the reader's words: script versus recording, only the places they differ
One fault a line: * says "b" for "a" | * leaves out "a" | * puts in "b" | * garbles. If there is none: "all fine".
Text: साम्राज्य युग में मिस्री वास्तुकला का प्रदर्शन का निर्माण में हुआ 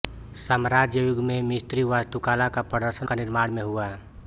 all fine